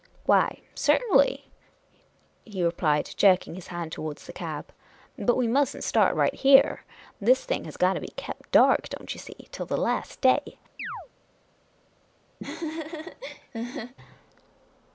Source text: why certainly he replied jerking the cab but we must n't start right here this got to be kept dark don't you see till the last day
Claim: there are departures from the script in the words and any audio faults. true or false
true